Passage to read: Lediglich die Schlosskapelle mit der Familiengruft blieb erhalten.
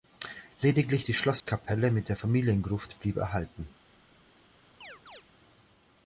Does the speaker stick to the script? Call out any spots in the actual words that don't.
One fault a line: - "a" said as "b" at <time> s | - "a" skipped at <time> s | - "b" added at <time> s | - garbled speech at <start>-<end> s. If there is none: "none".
none